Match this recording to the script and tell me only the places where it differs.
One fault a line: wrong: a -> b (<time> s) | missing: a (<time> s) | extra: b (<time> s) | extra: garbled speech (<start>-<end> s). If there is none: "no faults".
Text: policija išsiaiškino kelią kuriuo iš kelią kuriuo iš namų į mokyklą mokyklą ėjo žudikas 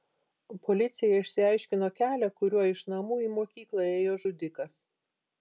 missing: kelią kuriuo iš (2.8 s)
missing: mokyklą (3.9 s)